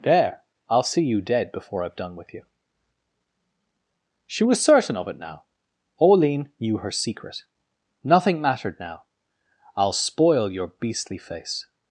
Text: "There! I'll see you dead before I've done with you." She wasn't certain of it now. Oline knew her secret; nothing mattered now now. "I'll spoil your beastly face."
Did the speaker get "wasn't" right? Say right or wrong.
wrong